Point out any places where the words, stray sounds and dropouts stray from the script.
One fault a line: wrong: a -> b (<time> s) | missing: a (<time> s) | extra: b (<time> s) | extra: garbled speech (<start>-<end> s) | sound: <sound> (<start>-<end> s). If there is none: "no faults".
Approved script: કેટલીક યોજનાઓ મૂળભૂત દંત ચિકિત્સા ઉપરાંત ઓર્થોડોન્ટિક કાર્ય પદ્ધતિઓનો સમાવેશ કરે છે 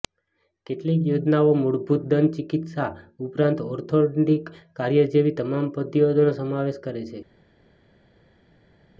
extra: જેવી તમામ (5.1 s)